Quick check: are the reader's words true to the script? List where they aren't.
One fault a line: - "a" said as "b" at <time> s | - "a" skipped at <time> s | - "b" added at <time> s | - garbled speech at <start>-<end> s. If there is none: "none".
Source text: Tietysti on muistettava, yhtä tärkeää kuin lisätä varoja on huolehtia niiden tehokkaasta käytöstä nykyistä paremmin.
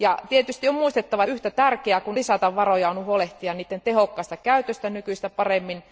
none